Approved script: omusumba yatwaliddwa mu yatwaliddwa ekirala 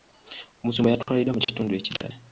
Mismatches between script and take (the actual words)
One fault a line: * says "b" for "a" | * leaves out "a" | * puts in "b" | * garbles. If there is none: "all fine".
* says "kitundu" for "yatwaliddwa"